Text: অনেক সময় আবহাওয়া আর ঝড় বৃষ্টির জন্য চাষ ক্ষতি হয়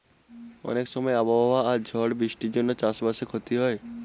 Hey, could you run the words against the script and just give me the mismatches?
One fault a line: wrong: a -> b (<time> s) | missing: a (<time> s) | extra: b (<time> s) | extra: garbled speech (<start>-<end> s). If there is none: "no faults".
extra: বাসে (3.0 s)